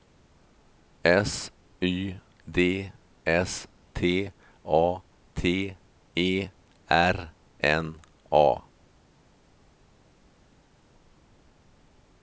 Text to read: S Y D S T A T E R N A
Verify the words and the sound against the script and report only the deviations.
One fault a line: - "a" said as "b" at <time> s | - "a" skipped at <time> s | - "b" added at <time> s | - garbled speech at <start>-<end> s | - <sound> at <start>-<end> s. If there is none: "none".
none